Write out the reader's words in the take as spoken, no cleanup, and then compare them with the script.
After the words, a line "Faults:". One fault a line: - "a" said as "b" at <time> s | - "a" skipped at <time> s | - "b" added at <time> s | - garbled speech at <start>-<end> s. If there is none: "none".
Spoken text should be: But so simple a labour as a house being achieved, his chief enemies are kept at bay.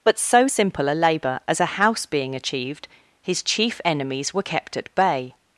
But so simple a labour as a house being achieved, his chief enemies were kept at bay.
Faults:
- "are" said as "were" at 4.3 s